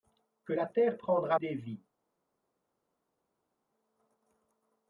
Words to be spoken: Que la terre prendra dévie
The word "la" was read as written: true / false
true